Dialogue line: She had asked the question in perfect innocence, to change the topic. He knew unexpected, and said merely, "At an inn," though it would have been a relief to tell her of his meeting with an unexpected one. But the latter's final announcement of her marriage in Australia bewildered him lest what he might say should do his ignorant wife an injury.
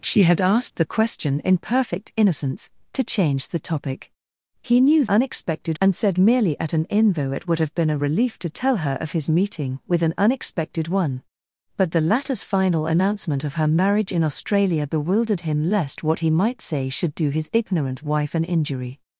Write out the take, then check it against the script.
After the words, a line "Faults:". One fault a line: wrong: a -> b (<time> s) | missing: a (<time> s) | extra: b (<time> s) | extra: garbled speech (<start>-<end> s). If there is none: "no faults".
She had asked the question in perfect innocence, to change the topic. He knew unexpected, and said merely, "At an inn," though it would have been a relief to tell her of his meeting with an unexpected one. But the latter's final announcement of her marriage in Australia bewildered him lest what he might say should do his ignorant wife an injury.
Faults:
no faults